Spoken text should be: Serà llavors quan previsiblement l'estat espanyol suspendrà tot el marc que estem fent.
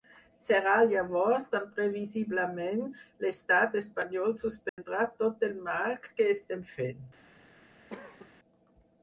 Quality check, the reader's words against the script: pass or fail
pass